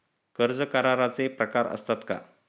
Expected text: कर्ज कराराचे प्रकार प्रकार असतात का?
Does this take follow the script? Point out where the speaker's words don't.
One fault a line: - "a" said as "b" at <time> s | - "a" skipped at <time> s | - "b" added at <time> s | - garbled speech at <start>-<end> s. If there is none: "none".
- "प्रकार" skipped at 1.7 s